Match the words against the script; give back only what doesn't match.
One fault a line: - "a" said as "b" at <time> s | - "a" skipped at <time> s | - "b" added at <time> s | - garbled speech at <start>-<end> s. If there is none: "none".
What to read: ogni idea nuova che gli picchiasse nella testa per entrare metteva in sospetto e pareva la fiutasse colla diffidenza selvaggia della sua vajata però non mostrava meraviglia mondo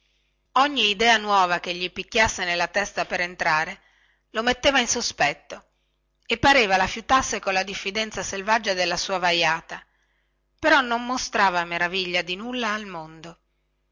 - "lo" added at 4.3 s
- "di nulla al" added at 12.2 s